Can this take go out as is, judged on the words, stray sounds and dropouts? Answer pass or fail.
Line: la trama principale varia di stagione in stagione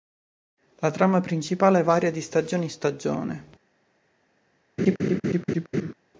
fail